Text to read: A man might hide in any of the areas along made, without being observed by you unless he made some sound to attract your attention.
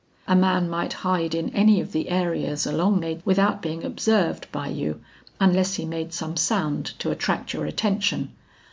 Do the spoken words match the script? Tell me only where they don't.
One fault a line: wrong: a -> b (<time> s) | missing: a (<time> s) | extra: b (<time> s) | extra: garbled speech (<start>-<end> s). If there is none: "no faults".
no faults